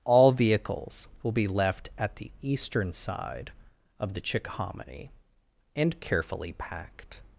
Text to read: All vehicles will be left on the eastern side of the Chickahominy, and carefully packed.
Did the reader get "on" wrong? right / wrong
wrong